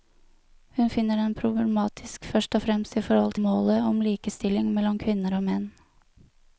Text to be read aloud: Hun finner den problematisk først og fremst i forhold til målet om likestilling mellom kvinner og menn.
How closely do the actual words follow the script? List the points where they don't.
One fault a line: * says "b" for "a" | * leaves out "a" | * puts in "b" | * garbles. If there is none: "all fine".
* leaves out "til"